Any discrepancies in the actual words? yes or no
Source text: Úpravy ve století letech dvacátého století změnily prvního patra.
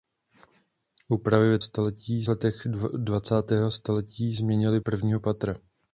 no